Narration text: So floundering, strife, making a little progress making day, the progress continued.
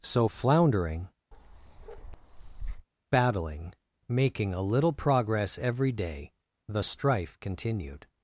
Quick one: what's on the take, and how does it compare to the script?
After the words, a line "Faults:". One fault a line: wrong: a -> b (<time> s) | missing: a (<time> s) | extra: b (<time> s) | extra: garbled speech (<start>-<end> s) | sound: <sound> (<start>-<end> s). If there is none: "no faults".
So floundering, battling, making a little progress every day, the strife continued.
Faults:
sound: bark (1.3-2.9 s)
wrong: strife -> battling (3.1 s)
wrong: making -> every (5.6 s)
wrong: progress -> strife (6.8 s)